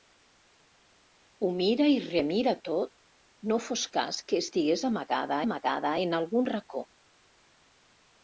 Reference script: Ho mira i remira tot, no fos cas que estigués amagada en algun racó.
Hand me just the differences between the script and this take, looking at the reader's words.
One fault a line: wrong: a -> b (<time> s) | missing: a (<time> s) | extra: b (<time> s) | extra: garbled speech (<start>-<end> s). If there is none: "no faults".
extra: amagada (5.5 s)